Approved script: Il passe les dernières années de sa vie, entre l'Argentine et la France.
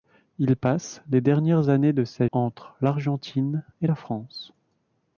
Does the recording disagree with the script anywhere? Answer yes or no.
yes